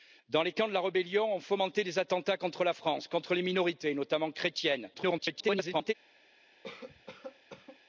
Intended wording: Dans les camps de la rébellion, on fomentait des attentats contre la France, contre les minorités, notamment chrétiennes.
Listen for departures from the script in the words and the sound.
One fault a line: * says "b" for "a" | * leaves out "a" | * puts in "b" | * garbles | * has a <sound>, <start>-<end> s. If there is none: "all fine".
* garbles
* has a cough, 6.6-7.8 s